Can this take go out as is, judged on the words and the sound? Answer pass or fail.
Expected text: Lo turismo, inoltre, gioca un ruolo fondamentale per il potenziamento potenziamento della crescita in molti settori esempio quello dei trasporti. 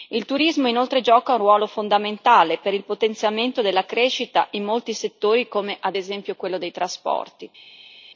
fail